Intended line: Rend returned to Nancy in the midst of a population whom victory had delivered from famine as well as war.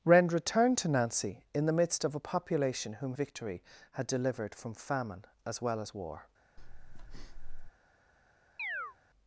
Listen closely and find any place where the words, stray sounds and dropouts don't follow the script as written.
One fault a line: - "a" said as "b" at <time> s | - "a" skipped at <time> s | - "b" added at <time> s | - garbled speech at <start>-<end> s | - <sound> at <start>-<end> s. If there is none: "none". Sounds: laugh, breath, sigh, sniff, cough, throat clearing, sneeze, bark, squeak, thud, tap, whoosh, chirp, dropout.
- breath at 6.6-7.7 s
- chirp at 8.6-9.0 s